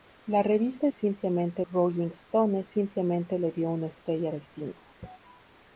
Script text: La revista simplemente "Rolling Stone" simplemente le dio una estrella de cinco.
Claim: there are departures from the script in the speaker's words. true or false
false